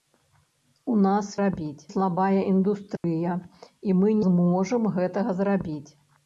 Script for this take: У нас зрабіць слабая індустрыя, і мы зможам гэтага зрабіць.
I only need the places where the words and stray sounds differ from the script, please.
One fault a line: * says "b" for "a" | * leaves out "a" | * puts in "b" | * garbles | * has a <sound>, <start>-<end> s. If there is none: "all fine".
* has a dropout, 3.0-3.0 s